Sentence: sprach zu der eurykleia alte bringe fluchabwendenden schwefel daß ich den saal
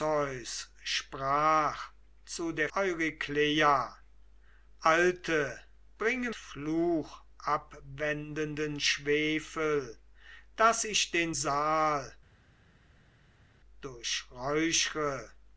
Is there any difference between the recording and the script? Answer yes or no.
no